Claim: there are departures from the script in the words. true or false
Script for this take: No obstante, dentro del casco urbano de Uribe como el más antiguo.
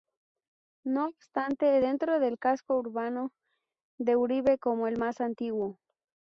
false